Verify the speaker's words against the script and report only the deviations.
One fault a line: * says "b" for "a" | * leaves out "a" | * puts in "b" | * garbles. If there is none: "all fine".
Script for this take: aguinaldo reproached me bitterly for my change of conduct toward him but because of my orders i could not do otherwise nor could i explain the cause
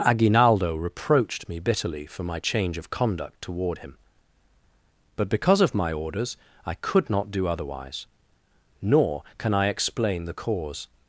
* says "can" for "could"